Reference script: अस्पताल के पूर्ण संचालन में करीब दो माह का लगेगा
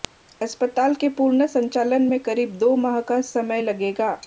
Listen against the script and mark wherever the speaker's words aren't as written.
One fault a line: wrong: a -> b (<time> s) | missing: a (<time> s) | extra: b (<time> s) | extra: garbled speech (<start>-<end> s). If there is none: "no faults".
extra: समय (3.2 s)